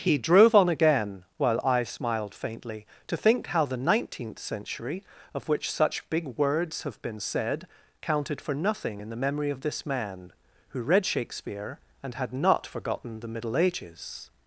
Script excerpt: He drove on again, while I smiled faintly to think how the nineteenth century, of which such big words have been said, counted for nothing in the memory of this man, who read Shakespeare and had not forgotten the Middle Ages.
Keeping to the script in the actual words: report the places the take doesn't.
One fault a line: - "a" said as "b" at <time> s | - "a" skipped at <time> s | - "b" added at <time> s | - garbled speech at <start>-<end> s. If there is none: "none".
none